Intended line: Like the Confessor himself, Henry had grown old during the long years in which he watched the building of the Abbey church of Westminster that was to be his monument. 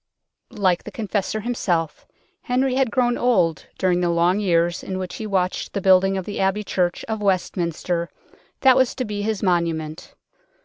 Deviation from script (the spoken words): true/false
false